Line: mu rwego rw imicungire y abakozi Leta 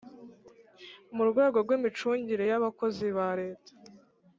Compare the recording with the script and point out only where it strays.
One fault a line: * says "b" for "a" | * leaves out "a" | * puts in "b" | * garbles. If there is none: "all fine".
* puts in "ba"